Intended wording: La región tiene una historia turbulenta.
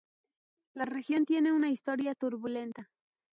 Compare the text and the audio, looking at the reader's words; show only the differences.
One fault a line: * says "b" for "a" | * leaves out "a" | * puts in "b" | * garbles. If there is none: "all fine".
all fine